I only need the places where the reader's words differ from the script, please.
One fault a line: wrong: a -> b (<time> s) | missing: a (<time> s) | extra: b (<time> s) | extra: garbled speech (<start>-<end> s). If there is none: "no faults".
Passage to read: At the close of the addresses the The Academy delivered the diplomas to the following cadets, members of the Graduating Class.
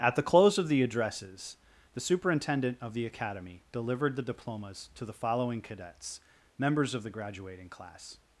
extra: Superintendent of (2.0 s)